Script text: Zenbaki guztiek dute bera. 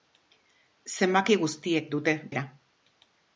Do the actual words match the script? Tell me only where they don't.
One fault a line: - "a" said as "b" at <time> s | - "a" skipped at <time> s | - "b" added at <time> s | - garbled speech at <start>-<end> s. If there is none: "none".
none